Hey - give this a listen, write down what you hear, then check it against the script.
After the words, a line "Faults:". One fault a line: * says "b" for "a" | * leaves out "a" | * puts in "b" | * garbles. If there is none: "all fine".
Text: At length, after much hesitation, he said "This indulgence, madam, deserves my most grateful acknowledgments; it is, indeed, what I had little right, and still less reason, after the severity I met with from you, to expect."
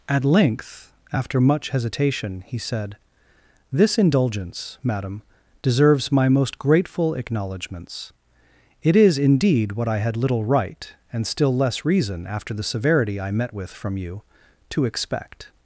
At length, after much hesitation, he said "This indulgence, madam, deserves my most grateful acknowledgments; it is, indeed, what I had little right, and still less reason, after the severity I met with from you, to expect."
Faults:
all fine